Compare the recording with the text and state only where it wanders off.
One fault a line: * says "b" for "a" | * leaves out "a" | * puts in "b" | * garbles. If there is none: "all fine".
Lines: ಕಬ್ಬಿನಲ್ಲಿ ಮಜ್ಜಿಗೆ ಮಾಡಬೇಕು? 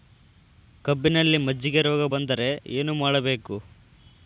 * puts in "ರೋಗ ಬಂದರೆ ಏನು"